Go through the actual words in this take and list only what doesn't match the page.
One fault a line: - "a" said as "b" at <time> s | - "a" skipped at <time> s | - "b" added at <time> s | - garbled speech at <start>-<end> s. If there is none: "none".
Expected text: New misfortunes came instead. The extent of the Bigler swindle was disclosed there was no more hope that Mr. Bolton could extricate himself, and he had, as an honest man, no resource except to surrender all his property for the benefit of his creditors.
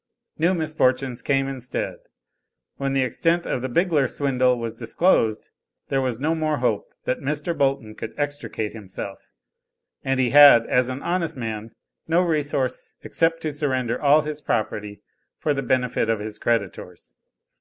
- "When" added at 2.8 s